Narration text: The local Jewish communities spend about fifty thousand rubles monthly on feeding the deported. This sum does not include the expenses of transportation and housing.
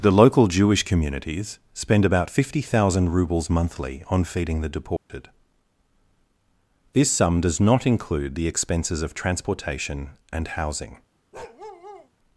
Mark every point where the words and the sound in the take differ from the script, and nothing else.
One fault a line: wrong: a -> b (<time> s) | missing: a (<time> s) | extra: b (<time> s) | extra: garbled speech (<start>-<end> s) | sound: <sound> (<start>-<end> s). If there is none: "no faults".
sound: dropout (5.0-5.1 s)
sound: bark (11.3-12.1 s)